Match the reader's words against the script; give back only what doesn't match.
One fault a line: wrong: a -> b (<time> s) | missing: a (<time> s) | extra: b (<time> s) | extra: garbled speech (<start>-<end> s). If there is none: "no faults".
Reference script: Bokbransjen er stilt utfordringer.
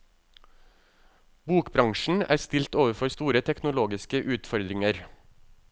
extra: overfor store teknologiske (2.8 s)